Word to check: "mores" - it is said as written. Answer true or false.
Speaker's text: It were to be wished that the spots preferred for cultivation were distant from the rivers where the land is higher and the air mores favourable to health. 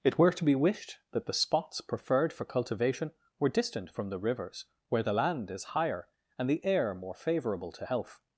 false